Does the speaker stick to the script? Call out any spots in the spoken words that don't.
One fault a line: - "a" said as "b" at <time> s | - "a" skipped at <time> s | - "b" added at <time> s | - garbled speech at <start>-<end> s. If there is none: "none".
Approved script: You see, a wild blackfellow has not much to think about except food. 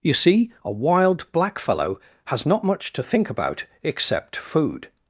none